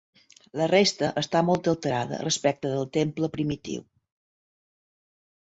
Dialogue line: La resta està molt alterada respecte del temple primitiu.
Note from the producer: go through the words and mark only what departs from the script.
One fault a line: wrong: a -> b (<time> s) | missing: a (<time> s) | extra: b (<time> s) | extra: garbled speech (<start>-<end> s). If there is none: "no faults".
no faults